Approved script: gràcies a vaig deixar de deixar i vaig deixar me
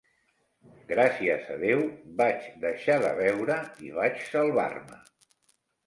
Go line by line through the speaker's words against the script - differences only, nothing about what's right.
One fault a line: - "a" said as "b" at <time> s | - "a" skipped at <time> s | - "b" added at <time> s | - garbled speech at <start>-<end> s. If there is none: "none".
- "déu" added at 1.6 s
- "deixar" said as "beure" at 3.2 s
- "deixar" said as "salvar" at 4.3 s